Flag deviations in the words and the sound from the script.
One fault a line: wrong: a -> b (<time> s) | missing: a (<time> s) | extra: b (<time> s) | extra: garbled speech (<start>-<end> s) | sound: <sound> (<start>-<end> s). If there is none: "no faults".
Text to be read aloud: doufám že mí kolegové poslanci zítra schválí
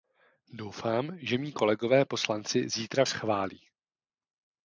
no faults